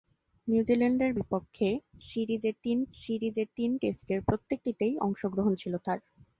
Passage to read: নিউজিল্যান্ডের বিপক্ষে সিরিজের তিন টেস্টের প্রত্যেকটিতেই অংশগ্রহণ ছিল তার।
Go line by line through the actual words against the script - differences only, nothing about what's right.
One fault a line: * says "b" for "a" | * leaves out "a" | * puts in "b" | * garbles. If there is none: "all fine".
* puts in "সিরিজের তিন"